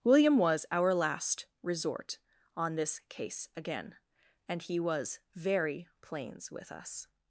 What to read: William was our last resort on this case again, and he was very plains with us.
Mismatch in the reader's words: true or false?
false